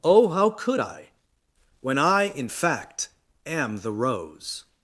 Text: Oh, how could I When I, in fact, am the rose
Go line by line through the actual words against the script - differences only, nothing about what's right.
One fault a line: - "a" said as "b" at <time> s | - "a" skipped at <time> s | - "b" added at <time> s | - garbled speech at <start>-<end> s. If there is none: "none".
none